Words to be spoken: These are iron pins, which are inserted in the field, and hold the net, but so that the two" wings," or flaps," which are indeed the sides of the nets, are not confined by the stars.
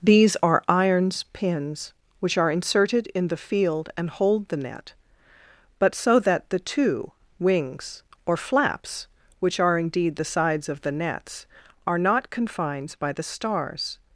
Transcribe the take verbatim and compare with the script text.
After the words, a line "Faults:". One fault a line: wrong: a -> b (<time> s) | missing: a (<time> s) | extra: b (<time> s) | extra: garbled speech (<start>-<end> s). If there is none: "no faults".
These are irons pins, which are inserted in the field, and hold the net, but so that the two" wings," or flaps," which are indeed the sides of the nets, are not confined by the stars.
Faults:
wrong: iron -> irons (0.7 s)